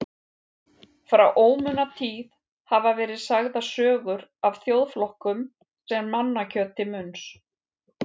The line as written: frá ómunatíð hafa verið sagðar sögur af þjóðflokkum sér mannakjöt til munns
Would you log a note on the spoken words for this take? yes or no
no